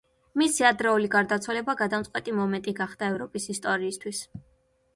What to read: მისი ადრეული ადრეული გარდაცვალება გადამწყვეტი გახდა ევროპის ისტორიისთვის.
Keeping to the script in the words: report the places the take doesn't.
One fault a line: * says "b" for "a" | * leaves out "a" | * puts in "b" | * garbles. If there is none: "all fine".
* leaves out "ადრეული"
* puts in "მომენტი"